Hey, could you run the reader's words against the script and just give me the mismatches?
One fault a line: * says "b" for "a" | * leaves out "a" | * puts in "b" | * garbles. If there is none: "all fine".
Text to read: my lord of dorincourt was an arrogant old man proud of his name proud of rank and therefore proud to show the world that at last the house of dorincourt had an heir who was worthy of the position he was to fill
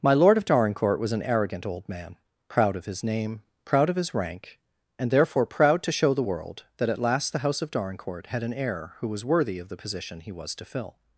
* puts in "his"